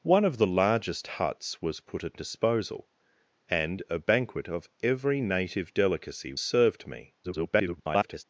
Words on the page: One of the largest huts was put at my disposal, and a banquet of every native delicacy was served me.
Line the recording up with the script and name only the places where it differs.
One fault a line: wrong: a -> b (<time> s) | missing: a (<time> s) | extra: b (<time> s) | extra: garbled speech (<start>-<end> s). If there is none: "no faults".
missing: my (2.2 s)
missing: was (6.3 s)
extra: garbled speech (7.2-8.2 s)